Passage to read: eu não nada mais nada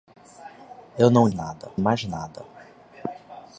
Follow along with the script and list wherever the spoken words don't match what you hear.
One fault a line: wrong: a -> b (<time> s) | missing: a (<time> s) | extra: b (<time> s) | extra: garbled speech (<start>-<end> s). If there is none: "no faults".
no faults